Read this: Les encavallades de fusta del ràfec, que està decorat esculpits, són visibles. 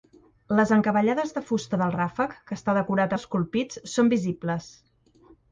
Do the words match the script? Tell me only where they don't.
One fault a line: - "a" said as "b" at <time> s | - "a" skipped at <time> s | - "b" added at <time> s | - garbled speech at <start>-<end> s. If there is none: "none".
none